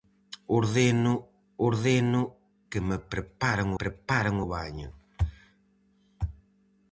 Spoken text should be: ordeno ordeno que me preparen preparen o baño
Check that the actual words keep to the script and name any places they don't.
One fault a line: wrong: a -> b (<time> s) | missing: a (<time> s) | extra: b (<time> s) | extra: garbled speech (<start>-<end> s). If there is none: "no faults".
no faults